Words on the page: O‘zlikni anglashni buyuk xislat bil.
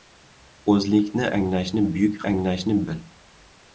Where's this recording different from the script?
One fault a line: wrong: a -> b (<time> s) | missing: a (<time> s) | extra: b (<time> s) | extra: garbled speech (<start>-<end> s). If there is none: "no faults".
wrong: xislat -> anglashni (2.3 s)